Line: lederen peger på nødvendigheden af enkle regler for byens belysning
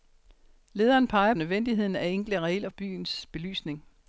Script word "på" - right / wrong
wrong